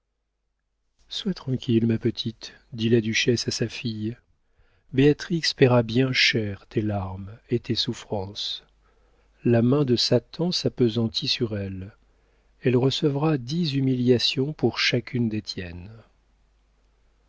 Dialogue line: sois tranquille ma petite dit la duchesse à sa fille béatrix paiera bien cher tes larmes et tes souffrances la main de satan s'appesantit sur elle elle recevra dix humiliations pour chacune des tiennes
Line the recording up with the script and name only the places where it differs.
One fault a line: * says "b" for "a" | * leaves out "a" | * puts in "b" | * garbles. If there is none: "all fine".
all fine